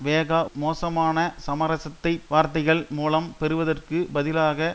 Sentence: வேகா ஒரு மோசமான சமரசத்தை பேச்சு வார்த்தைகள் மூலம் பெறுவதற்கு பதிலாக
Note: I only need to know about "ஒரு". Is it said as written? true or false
false